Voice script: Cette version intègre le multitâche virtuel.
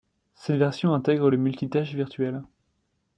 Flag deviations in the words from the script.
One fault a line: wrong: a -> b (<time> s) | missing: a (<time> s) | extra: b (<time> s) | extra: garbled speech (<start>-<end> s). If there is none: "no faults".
no faults